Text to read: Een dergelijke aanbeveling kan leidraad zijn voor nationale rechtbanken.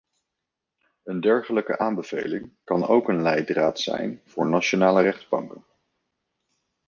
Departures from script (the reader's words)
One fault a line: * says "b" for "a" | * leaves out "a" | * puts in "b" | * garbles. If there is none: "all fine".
* puts in "ook een"